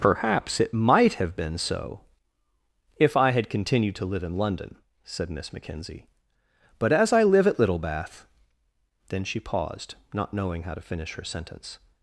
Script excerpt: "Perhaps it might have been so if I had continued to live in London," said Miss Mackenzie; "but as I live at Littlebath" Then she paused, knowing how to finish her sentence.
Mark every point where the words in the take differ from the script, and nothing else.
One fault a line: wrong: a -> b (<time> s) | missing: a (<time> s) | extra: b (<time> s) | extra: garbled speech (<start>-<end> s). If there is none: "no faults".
extra: not (10.1 s)